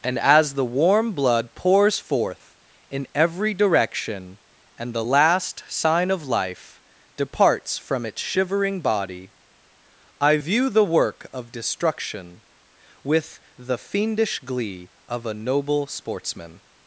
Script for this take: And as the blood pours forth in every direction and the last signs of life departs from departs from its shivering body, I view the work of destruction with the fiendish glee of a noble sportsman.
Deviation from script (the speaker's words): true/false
true